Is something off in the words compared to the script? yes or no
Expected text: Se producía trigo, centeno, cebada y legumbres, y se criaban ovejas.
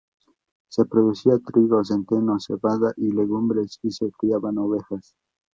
no